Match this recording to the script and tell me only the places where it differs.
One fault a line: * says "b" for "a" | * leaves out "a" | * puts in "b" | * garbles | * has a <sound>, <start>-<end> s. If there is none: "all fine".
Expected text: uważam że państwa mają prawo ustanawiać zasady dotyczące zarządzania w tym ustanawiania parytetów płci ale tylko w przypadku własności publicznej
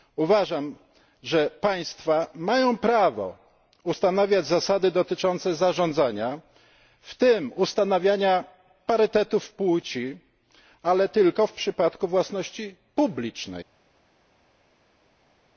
all fine